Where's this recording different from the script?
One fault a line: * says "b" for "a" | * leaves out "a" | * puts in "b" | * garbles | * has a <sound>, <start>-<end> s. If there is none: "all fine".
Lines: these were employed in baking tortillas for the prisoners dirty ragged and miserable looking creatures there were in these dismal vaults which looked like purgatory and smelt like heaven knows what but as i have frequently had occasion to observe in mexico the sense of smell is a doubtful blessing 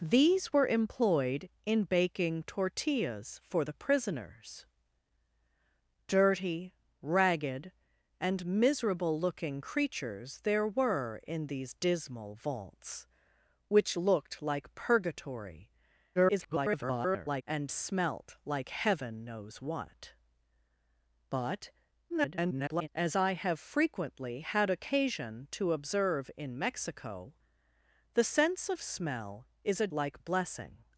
* garbles
* garbles
* says "like" for "doubtful"